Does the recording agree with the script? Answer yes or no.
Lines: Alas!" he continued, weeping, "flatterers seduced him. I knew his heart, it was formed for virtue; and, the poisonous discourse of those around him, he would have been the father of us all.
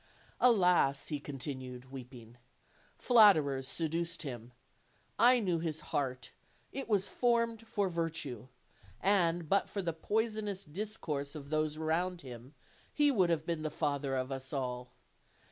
no